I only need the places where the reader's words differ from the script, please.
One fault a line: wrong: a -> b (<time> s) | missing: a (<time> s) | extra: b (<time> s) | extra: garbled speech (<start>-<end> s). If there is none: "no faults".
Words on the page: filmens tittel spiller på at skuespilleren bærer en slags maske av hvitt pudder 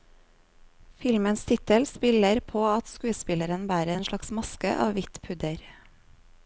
no faults